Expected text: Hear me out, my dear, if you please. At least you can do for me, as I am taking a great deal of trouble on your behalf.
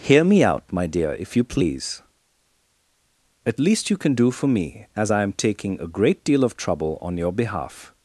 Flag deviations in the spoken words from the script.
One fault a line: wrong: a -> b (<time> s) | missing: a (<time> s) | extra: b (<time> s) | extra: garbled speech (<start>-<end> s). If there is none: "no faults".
no faults